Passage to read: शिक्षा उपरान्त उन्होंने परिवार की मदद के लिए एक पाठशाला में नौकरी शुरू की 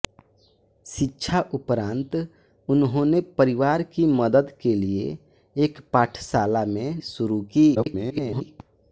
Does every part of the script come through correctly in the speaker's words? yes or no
no